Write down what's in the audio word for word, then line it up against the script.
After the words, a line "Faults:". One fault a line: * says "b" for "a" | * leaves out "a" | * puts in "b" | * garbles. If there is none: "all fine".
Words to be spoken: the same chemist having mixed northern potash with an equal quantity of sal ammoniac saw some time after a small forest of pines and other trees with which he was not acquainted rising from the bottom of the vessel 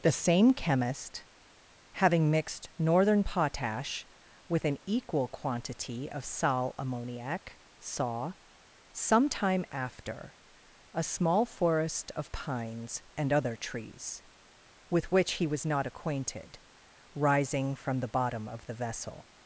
the same chemist having mixed northern potash with an equal quantity of sal ammoniac saw some time after a small forest of pines and other trees with which he was not acquainted rising from the bottom of the vessel
Faults:
all fine